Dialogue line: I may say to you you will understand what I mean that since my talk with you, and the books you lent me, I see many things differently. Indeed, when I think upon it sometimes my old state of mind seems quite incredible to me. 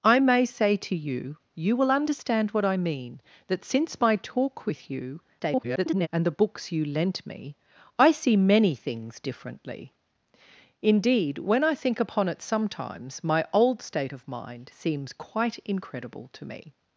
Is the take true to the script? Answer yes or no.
no